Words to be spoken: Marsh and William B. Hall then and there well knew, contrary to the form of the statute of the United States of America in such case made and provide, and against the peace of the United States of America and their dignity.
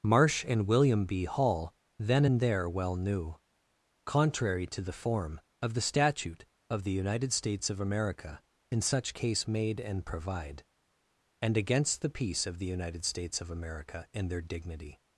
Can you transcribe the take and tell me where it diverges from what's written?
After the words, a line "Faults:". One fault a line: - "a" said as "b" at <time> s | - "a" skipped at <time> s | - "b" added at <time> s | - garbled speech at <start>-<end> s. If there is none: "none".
Marsh and William B. Hall then and there well knew, contrary to the form of the statute of the United States of America in such case made and provide, and against the peace of the United States of America and their dignity.
Faults:
none